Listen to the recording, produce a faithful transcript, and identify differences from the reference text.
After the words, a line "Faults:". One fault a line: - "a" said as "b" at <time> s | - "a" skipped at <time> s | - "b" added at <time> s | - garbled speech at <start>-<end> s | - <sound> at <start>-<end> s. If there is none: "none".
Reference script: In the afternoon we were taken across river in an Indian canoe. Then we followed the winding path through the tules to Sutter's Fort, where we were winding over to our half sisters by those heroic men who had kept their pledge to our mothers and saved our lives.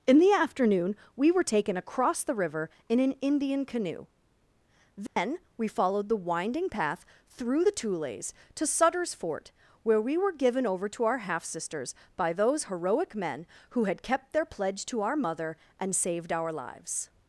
In the afternoon we were taken across the river in an Indian canoe. Then we followed the winding path through the tules to Sutter's Fort, where we were given over to our half sisters by those heroic men who had kept their pledge to our mother and saved our lives.
Faults:
- "the" added at 2.2 s
- dropout at 5.1-5.2 s
- "winding" said as "given" at 10.3 s
- "mothers" said as "mother" at 15.2 s